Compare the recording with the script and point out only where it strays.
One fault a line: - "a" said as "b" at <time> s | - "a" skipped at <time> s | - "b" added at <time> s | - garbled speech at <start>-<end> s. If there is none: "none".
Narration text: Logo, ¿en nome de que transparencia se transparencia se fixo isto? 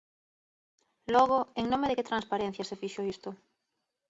- "transparencia se" skipped at 2.8 s